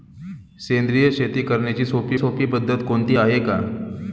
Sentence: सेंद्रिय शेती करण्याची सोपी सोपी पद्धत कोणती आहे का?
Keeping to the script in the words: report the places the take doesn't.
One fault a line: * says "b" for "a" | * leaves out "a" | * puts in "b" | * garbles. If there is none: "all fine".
all fine